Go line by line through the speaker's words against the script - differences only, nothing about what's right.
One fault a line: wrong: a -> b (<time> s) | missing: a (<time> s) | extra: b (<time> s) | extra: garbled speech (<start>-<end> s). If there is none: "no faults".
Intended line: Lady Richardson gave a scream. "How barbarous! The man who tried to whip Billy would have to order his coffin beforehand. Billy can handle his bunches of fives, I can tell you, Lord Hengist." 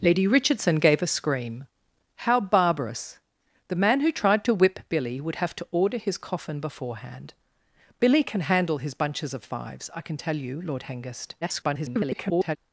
extra: garbled speech (11.4-12.6 s)